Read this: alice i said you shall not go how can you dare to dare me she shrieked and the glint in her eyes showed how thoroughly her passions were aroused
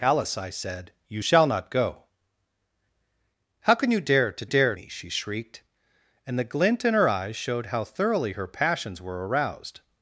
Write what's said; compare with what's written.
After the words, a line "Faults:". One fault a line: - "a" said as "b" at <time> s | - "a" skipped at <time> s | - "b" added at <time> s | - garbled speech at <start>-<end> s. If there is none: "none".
alice i said you shall not go how can you dare to dare me she shrieked and the glint in her eyes showed how thoroughly her passions were aroused
Faults:
none